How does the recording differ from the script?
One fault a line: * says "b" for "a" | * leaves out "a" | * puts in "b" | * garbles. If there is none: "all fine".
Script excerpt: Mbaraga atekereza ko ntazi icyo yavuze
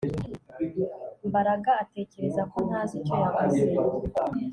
all fine